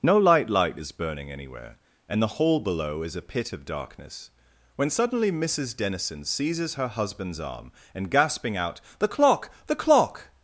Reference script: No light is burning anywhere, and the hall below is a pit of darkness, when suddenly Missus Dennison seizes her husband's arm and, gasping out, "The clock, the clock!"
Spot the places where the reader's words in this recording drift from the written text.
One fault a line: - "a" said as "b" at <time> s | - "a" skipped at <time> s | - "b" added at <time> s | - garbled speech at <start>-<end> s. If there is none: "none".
- "light" added at 0.5 s